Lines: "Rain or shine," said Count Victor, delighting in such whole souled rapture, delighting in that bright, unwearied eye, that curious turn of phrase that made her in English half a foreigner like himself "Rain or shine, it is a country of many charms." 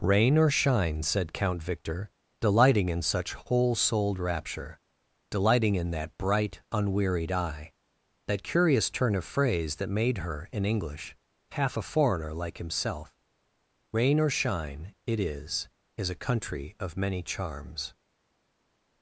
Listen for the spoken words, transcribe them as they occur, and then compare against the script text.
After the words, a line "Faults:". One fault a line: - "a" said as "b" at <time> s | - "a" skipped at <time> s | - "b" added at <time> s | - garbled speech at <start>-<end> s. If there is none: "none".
"Rain or shine," said Count Victor, delighting in such whole souled rapture, delighting in that bright, unwearied eye, that curious turn of phrase that made her in English half a foreigner like himself "Rain or shine, it is is a country of many charms."
Faults:
- "is" added at 16.0 s